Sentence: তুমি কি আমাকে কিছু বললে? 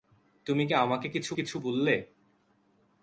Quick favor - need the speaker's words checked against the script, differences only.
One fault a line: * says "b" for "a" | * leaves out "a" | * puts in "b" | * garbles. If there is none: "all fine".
* puts in "কিছু"